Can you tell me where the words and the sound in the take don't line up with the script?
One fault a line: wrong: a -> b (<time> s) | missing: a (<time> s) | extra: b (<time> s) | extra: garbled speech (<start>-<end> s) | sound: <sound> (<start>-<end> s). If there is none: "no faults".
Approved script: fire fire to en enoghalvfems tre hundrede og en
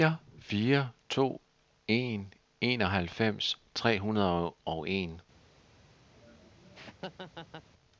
sound: laugh (6.1-7.7 s)